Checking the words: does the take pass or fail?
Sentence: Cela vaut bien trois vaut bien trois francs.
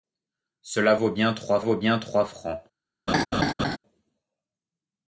pass